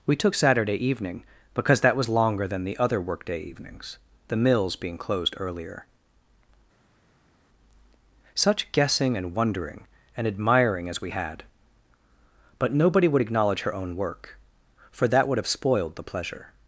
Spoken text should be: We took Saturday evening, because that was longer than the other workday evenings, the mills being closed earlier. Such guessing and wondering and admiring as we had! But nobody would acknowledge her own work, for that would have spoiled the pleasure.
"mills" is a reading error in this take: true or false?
false